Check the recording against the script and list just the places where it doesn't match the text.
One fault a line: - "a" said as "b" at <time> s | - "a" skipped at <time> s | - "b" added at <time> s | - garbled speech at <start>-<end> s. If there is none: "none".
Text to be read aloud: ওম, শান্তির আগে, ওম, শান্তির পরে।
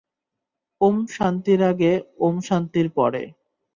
none